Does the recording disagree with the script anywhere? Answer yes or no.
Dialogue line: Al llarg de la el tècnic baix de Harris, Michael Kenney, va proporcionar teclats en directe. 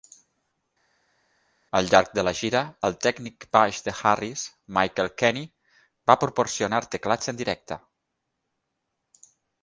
yes